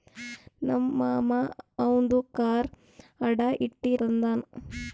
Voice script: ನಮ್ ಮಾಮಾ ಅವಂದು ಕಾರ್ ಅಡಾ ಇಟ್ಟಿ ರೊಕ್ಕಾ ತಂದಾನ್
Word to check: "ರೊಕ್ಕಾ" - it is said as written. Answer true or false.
false